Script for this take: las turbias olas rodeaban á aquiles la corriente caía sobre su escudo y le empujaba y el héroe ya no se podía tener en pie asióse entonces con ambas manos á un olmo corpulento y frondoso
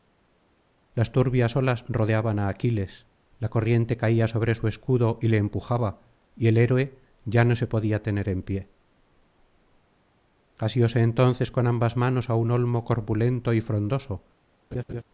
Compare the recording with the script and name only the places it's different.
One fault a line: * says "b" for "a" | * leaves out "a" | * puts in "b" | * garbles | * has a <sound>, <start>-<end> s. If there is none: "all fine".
* has a laugh, 14.7-15.0 s